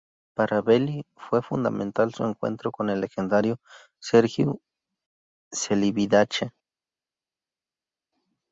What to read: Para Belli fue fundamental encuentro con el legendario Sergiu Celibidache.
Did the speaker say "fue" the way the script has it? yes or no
yes